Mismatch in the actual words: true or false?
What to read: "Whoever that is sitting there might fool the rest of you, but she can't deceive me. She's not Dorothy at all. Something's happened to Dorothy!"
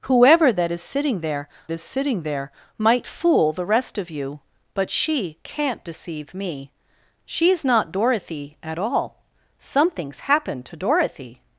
true